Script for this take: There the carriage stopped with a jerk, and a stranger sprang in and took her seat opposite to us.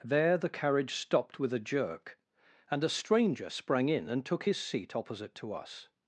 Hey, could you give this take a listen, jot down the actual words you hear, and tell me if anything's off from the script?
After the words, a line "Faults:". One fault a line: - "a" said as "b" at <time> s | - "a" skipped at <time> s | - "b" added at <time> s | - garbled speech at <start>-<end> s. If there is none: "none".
There the carriage stopped with a jerk, and a stranger sprang in and took his seat opposite to us.
Faults:
- "her" said as "his" at 4.4 s